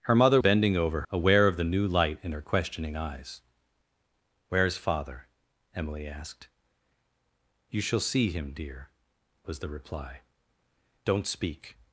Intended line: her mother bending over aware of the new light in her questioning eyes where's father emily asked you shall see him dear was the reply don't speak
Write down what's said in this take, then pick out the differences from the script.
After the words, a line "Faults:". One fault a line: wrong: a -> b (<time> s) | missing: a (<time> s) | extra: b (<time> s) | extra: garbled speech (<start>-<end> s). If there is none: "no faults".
her mother bending over aware of the new light in her questioning eyes where's father emily asked you shall see him dear was the reply don't speak
Faults:
no faults